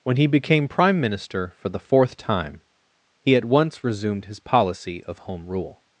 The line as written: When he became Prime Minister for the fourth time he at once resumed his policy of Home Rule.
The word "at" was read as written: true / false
true